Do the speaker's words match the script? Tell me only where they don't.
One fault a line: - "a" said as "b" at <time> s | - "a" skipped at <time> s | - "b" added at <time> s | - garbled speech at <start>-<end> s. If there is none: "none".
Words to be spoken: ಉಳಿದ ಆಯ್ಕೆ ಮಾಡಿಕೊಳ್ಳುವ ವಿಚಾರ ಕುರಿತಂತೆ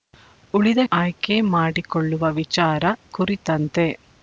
none